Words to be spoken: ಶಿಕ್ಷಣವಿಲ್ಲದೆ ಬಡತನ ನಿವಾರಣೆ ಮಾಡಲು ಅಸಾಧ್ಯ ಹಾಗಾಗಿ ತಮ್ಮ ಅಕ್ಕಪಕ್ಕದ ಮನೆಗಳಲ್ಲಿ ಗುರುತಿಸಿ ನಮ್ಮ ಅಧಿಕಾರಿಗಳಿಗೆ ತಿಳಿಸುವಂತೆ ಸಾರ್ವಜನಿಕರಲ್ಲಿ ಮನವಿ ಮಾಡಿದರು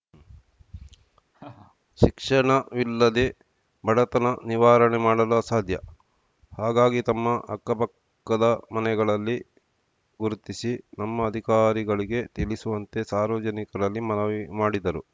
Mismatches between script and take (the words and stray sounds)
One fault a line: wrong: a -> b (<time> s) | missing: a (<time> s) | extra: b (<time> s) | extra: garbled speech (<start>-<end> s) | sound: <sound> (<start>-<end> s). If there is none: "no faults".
sound: laugh (1.3-1.8 s)